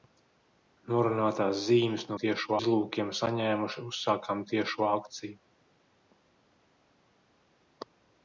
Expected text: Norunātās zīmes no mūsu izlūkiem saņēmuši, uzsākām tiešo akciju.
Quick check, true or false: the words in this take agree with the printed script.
false